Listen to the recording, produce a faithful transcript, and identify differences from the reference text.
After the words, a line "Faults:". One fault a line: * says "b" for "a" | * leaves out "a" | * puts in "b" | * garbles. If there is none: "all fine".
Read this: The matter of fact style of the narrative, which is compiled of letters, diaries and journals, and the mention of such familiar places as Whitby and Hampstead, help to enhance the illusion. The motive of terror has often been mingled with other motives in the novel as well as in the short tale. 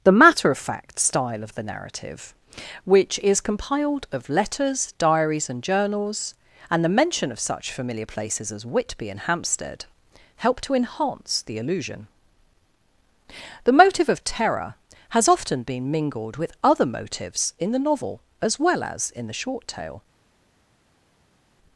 The matter of fact style of the narrative, which is compiled of letters, diaries and journals, and the mention of such familiar places as Whitby and Hampstead, help to enhance the illusion. The motive of terror has often been mingled with other motives in the novel as well as in the short tale.
Faults:
all fine